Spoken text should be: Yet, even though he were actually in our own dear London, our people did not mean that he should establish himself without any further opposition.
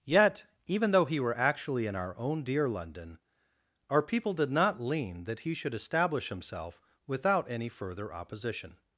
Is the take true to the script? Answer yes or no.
no